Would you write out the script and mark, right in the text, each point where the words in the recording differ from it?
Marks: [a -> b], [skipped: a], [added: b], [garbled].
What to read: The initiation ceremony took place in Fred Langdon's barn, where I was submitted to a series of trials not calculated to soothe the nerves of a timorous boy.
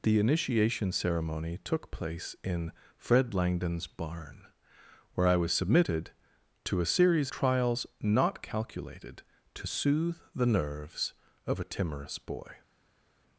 The initiation ceremony took place in Fred Langdon's barn, where I was submitted to a series [skipped: of] trials not calculated to soothe the nerves of a timorous boy.